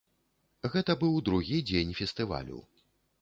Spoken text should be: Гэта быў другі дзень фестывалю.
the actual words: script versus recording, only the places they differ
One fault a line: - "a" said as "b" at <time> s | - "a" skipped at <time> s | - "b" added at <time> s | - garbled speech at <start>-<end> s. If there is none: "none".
none